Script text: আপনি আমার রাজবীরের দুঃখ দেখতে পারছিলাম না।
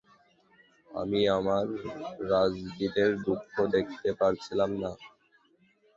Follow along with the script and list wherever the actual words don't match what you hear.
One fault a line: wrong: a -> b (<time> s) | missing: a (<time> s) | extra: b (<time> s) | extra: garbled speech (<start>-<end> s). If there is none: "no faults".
wrong: আপনি -> আমি (0.9 s)